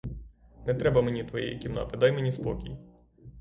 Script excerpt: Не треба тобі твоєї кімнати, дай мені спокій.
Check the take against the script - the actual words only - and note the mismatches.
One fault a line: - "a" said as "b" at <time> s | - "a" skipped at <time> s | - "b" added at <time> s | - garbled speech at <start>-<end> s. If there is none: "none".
- "тобі" said as "мені" at 1.0 s